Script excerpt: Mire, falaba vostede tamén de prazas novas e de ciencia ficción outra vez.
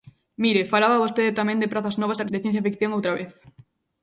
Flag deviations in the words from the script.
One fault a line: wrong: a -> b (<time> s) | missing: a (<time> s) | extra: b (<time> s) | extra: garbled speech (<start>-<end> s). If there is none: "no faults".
no faults